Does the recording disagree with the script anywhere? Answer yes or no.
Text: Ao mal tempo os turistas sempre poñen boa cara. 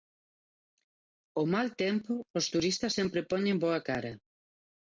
no